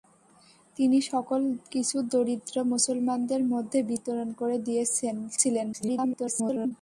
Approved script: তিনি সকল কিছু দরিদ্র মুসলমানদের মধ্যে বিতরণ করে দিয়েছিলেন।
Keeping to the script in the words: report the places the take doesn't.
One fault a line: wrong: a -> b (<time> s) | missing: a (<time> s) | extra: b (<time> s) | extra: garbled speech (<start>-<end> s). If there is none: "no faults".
extra: garbled speech (5.7-6.7 s)